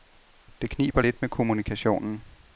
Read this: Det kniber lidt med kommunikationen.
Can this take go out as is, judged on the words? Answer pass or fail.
pass